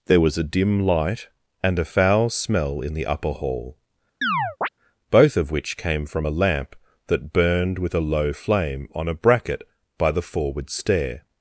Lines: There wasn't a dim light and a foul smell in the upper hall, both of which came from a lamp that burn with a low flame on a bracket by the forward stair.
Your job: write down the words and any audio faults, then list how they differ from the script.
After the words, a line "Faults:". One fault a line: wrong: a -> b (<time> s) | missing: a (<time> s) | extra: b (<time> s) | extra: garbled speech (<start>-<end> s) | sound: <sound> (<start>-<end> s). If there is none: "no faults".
There was a dim light and a foul smell in the upper hall, both of which came from a lamp that burned with a low flame on a bracket by the forward stair.
Faults:
wrong: wasn't -> was (0.2 s)
sound: chirp (4.2-4.7 s)
wrong: burn -> burned (7.3 s)